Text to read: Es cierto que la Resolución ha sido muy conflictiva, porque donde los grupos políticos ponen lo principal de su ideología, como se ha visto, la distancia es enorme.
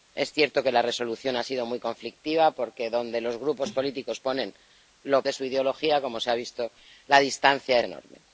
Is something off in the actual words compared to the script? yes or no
yes